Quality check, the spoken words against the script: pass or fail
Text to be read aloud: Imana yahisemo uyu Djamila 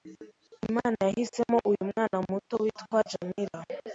fail